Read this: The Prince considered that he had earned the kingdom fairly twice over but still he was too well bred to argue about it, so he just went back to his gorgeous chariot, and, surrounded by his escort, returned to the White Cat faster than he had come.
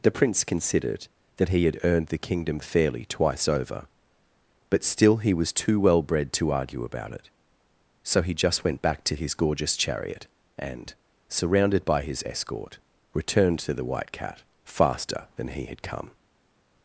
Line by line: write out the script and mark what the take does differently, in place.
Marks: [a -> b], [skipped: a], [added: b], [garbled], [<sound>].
The Prince considered that he had earned the kingdom fairly twice over but still he was too well bred to argue about it, so he just went back to his gorgeous chariot, and, surrounded by his escort, returned to the White Cat faster than he had come.